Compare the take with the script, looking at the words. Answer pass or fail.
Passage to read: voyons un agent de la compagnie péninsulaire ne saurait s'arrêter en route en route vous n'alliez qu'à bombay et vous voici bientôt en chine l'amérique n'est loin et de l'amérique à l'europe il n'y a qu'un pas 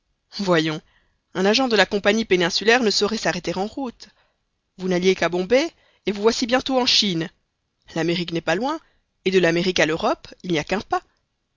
fail